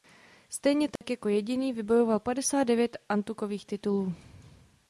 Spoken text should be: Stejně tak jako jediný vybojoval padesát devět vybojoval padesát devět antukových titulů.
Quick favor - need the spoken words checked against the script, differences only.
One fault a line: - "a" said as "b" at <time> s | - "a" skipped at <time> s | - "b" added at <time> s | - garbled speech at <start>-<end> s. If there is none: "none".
- "vybojoval padesát devět" skipped at 3.0 s